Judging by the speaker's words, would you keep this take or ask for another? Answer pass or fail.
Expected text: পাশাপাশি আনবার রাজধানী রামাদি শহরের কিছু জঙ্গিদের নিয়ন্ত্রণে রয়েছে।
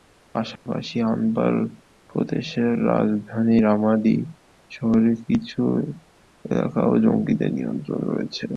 fail